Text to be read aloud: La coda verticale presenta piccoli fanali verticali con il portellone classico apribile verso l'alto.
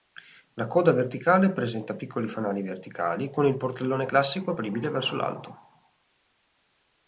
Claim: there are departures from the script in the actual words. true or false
false